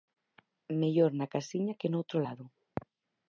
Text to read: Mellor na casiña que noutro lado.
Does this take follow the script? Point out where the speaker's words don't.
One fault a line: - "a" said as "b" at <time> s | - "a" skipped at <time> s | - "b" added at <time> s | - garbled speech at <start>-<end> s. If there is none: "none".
none